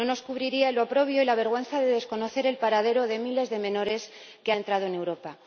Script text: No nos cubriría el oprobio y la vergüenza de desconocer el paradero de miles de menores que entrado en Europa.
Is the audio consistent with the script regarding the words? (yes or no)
yes